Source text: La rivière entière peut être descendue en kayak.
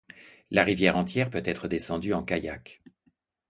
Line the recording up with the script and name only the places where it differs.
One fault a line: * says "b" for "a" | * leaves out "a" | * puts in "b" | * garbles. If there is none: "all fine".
all fine